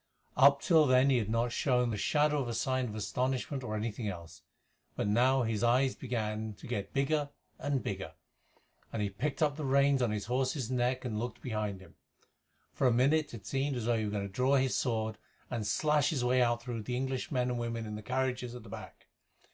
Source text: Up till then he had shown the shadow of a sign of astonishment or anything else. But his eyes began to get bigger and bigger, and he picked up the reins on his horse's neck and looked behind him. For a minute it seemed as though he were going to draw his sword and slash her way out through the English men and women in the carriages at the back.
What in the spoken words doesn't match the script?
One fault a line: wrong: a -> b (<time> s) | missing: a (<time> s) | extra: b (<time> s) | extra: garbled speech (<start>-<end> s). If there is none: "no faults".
extra: not (1.3 s)
extra: now (5.1 s)
wrong: her -> his (16.1 s)